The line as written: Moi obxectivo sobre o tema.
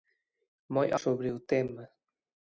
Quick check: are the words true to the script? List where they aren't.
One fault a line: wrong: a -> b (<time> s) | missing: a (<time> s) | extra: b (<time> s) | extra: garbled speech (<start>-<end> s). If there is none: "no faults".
missing: obxectivo (0.9 s)